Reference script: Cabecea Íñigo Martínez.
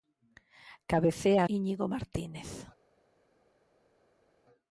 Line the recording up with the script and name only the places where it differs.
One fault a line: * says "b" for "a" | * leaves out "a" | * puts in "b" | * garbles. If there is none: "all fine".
all fine